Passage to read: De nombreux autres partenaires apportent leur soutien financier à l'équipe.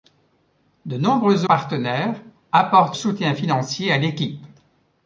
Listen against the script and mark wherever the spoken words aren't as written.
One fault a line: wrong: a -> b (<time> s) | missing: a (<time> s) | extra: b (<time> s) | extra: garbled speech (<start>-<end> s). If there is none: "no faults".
missing: autres (1.4 s)
missing: leur (3.0 s)